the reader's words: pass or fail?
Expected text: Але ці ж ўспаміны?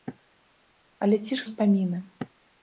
pass